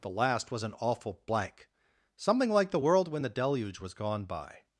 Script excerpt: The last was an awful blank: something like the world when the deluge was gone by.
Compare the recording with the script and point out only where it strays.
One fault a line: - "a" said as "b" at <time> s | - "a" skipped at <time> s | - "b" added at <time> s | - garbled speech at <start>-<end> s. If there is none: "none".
none